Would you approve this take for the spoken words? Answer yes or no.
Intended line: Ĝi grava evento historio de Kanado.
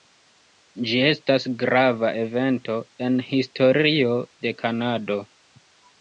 no